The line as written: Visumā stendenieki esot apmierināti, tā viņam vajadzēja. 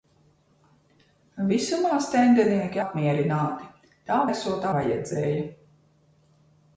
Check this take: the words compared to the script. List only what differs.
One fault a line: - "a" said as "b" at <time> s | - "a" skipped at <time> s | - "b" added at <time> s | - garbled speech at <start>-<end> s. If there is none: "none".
- "esot" skipped at 2.8 s
- "viņam" said as "esot" at 4.3 s